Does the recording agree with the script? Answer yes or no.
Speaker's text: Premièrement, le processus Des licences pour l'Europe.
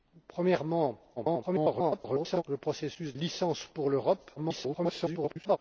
no